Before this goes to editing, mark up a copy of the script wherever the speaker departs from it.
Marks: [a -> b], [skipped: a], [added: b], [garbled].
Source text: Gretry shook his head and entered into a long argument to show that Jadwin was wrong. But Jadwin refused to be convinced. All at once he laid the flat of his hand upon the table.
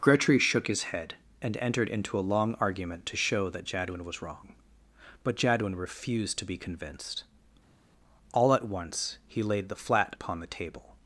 Gretry shook his head and entered into a long argument to show that Jadwin was wrong. But Jadwin refused to be convinced. All at once he laid the flat [skipped: of his hand] upon the table.